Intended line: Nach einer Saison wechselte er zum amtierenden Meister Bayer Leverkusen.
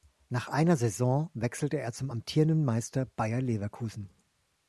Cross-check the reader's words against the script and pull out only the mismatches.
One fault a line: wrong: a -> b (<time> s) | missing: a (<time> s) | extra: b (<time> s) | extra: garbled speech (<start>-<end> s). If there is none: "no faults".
no faults